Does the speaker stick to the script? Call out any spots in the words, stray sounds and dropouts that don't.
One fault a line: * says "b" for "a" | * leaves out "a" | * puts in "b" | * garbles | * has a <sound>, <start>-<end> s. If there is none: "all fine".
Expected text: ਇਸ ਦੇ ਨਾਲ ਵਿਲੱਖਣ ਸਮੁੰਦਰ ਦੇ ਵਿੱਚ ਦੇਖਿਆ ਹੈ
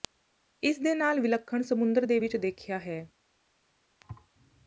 * has a thud, 4.0-4.3 s